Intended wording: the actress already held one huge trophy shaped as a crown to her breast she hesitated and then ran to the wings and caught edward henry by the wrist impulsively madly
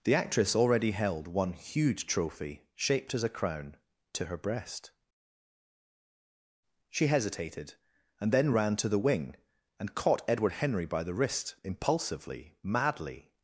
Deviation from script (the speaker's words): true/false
true